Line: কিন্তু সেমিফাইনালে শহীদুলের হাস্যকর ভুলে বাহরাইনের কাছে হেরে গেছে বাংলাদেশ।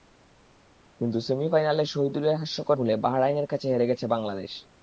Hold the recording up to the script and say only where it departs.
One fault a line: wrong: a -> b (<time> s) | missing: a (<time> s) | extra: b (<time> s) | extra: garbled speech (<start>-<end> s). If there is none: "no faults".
no faults